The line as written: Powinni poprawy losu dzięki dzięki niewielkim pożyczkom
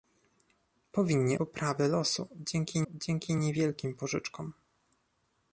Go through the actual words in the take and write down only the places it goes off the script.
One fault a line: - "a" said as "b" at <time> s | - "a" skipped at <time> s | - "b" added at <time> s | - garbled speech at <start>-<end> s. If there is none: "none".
none